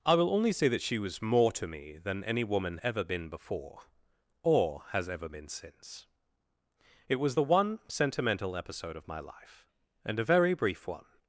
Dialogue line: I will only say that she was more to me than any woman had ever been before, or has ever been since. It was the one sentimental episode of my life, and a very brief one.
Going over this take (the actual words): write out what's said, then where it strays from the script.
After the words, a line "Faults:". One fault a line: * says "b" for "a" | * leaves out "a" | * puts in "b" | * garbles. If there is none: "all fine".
I will only say that she was more to me than any woman ever been before, or has ever been since. It was the one sentimental episode of my life, and a very brief one.
Faults:
* leaves out "had"